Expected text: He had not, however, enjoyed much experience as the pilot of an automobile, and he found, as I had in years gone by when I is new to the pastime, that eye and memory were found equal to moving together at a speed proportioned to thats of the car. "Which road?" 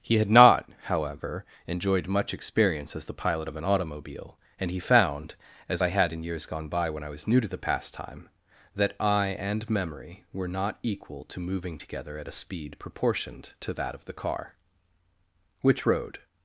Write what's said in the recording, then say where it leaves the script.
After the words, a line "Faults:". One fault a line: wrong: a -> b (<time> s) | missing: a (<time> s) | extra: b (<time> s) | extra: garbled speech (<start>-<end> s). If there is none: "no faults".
He had not, however, enjoyed much experience as the pilot of an automobile, and he found, as I had in years gone by when I was new to the pastime, that eye and memory were not equal to moving together at a speed proportioned to that of the car. "Which road?"
Faults:
wrong: is -> was (7.1 s)
wrong: found -> not (10.5 s)
wrong: thats -> that (13.7 s)